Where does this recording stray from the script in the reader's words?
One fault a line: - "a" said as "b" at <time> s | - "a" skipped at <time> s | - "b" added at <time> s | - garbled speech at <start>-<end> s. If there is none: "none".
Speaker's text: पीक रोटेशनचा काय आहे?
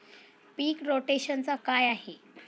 none